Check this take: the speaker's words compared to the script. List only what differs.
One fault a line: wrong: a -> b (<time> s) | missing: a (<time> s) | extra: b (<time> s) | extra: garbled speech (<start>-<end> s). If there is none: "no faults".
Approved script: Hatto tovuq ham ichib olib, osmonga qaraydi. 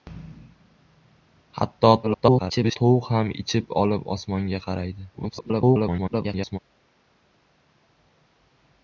extra: garbled speech (2.0-2.8 s)
extra: garbled speech (5.1-6.6 s)